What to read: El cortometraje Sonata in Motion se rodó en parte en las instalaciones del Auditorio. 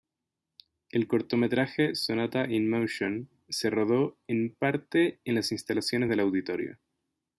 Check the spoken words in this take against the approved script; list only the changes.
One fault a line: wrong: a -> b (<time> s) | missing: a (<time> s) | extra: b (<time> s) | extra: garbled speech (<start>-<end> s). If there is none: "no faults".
no faults